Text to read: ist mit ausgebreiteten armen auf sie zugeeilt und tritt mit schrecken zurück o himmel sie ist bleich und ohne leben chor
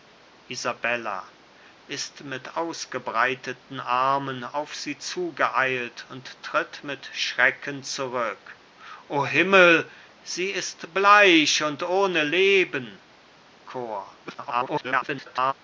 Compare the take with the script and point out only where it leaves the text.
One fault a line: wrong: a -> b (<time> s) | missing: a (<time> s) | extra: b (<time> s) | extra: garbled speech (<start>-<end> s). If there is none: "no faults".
extra: garbled speech (14.2-15.5 s)